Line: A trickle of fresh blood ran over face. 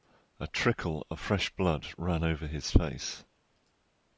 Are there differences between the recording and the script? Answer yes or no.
yes